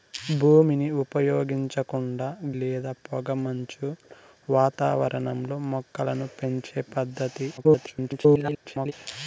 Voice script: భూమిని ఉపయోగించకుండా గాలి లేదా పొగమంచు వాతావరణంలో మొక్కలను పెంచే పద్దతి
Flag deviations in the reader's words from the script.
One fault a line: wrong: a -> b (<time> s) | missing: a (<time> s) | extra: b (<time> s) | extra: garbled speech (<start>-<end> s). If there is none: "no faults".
missing: గాలి (2.3 s)
extra: garbled speech (7.6-8.9 s)